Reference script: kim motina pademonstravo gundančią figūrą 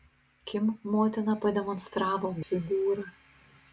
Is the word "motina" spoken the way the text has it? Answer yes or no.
yes